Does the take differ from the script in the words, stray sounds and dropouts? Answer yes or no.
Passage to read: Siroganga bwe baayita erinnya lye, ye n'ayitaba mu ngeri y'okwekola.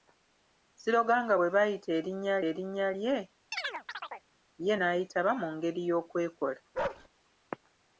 yes